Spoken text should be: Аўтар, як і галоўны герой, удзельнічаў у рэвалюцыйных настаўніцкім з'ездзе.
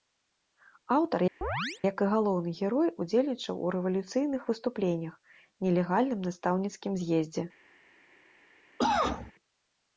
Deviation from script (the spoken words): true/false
true